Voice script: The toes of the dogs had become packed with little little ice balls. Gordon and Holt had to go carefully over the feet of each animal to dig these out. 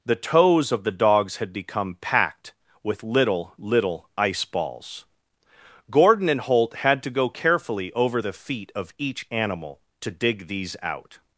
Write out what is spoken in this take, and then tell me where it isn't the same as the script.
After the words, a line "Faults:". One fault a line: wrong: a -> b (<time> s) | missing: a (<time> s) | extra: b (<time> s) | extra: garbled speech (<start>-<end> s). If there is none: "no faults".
The toes of the dogs had become packed with little little ice balls. Gordon and Holt had to go carefully over the feet of each animal to dig these out.
Faults:
no faults